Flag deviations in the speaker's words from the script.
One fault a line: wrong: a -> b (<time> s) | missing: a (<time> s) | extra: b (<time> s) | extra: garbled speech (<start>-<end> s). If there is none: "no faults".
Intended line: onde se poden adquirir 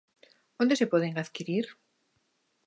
no faults